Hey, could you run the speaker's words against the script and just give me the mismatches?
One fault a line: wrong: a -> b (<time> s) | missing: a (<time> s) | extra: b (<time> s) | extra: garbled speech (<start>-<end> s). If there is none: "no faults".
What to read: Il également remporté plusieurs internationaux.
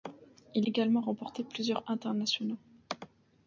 no faults